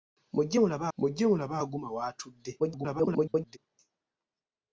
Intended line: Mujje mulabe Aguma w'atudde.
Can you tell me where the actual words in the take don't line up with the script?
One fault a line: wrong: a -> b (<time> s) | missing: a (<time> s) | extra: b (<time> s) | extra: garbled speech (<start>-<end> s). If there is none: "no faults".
extra: mujje mulabe (1.0 s)
extra: garbled speech (2.6-3.6 s)